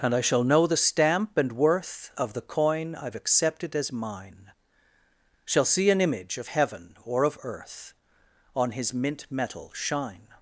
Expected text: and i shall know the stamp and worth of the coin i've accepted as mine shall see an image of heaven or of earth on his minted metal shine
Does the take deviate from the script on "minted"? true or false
true